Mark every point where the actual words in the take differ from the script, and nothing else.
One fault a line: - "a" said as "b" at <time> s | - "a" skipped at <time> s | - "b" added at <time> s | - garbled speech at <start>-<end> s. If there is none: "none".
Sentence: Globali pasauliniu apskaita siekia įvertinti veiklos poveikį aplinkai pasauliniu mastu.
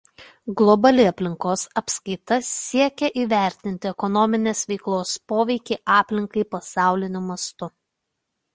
- "pasauliniu" said as "aplinkos" at 1.1 s
- "ekonominės" added at 3.9 s